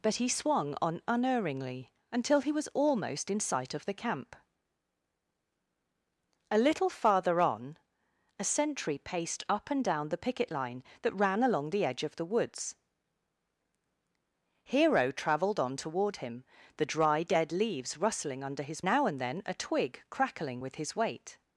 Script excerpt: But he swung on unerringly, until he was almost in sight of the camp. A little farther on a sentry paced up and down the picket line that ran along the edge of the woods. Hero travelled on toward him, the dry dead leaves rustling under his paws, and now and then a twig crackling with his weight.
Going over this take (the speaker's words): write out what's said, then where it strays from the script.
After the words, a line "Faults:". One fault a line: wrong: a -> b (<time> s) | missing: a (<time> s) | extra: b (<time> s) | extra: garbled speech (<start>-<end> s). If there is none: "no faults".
But he swung on unerringly, until he was almost in sight of the camp. A little farther on a sentry paced up and down the picket line that ran along the edge of the woods. Hero travelled on toward him, the dry dead leaves rustling under his now and then a twig crackling with his weight.
Faults:
missing: paws and (18.8 s)